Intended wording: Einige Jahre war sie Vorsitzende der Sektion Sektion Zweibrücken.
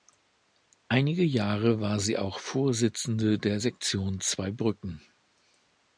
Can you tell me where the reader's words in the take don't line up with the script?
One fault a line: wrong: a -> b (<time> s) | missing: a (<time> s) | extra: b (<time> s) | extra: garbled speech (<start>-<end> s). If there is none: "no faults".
extra: auch (2.2 s)
missing: Sektion (4.2 s)